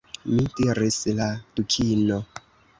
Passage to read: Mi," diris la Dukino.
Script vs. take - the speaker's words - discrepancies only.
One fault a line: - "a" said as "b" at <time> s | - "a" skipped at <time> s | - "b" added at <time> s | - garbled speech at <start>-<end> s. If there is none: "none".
none